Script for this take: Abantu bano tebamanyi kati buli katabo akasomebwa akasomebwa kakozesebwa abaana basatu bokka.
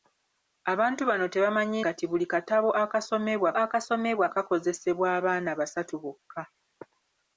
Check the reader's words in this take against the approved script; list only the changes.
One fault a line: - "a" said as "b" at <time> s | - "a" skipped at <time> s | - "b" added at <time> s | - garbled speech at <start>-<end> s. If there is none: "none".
none